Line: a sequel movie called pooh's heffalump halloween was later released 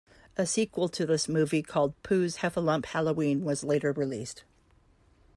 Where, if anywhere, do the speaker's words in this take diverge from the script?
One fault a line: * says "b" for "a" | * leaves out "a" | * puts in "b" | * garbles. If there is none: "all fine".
* puts in "to this"